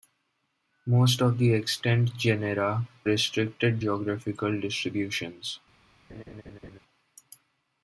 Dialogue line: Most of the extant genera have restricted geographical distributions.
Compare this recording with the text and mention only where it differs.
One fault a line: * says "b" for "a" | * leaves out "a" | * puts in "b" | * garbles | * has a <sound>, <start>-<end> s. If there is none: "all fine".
* leaves out "have"
* has a laugh, 6.1-6.8 s